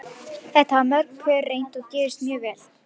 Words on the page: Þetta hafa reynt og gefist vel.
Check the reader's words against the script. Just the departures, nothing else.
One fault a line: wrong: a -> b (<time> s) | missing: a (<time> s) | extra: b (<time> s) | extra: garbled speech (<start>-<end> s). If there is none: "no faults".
extra: mörg pör (0.9 s)
extra: mjög (2.3 s)